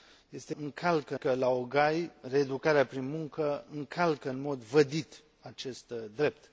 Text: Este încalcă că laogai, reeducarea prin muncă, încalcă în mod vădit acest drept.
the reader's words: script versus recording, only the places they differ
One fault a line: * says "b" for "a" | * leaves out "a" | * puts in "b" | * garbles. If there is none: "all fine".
all fine